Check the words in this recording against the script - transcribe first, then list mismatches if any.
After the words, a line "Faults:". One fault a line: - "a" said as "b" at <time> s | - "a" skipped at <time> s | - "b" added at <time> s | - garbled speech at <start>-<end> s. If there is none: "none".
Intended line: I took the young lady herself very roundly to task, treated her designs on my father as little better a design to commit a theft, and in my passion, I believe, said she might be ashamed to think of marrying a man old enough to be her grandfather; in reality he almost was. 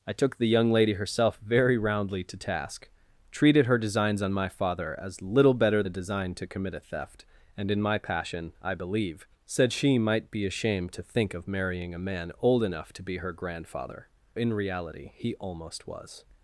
I took the young lady herself very roundly to task, treated her designs on my father as little better a design to commit a theft, and in my passion, I believe, said she might be ashamed to think of marrying a man old enough to be her grandfather; in reality he almost was.
Faults:
none